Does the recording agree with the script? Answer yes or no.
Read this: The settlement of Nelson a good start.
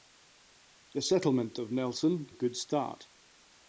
yes